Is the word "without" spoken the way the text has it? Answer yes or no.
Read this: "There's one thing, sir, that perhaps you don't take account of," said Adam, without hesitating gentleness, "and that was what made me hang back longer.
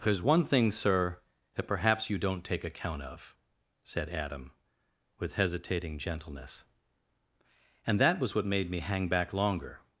no